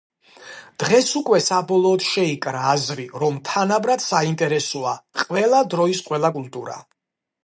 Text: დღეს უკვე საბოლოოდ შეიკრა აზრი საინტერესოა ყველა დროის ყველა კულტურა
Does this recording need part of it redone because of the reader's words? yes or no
yes